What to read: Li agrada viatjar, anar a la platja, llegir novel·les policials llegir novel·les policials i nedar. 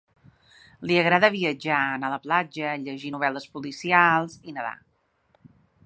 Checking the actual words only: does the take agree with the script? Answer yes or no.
no